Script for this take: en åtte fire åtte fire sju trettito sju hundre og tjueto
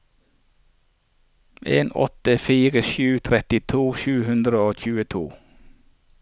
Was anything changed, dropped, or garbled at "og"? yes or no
no